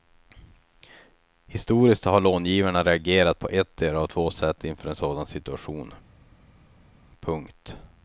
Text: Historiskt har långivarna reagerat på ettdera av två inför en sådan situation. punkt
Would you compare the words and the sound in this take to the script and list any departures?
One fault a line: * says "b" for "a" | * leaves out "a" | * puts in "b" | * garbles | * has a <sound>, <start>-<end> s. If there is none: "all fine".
* puts in "sätt"